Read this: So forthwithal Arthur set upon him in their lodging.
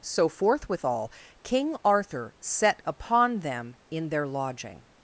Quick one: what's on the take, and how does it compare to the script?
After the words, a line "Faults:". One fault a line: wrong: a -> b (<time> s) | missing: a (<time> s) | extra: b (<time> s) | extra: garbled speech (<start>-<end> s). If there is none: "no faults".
So forthwithal King Arthur set upon them in their lodging.
Faults:
extra: King (1.4 s)
wrong: him -> them (3.4 s)